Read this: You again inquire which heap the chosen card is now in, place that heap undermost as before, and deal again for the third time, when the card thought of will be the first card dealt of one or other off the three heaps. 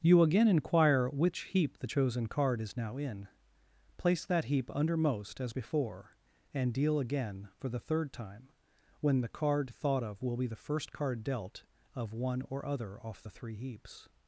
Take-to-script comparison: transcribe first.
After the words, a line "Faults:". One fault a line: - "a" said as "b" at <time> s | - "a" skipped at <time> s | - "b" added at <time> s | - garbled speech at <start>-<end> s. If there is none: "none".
You again inquire which heap the chosen card is now in, place that heap undermost as before, and deal again for the third time, when the card thought of will be the first card dealt of one or other off the three heaps.
Faults:
none